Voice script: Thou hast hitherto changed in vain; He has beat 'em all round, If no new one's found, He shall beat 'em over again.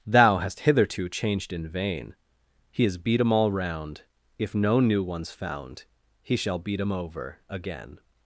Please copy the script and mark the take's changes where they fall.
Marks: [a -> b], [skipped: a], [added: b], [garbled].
Thou hast hitherto changed in vain; He has beat 'em all round, If no new one's found, He shall beat 'em over again.